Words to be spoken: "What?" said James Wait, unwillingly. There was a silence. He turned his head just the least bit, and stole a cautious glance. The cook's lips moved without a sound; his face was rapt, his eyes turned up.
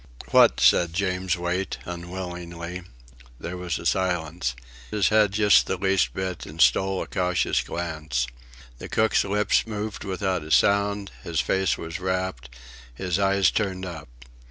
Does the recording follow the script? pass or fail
fail